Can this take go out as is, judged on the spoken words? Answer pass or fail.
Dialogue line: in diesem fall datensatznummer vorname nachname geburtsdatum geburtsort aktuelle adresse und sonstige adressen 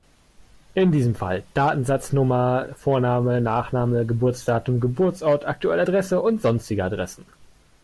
pass